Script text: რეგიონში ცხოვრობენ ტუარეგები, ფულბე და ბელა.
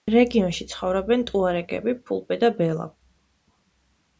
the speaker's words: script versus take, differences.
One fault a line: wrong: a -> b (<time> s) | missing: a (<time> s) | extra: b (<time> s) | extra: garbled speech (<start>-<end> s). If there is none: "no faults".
no faults